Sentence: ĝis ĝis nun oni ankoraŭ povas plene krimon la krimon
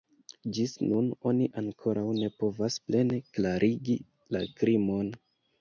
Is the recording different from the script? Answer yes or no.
yes